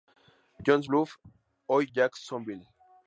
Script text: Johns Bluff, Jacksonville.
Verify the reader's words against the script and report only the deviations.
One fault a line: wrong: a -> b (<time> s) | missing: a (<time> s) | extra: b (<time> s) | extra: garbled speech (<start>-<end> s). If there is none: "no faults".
extra: hoy (1.7 s)